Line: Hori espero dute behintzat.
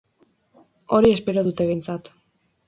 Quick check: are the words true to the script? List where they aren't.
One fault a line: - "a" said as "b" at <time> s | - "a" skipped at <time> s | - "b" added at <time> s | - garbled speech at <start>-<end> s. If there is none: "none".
none